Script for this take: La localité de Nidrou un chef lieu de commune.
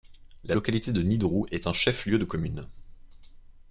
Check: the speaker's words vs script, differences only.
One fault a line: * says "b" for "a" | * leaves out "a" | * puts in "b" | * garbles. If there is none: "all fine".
* puts in "est"